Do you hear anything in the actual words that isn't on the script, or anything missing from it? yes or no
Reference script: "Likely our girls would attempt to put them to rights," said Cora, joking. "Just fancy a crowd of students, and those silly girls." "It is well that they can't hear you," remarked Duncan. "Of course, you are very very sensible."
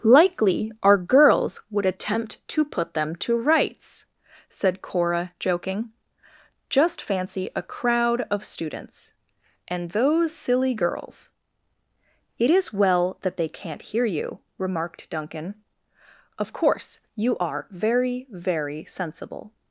no